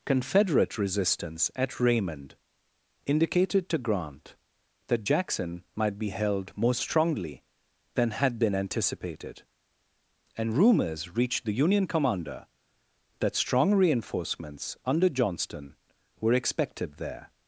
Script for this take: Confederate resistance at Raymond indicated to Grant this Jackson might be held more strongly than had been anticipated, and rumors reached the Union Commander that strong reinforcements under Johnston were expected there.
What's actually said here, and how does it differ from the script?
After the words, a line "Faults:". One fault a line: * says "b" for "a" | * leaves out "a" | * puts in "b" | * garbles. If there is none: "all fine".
Confederate resistance at Raymond indicated to Grant that Jackson might be held more strongly than had been anticipated, and rumors reached the Union Commander that strong reinforcements under Johnston were expected there.
Faults:
* says "that" for "this"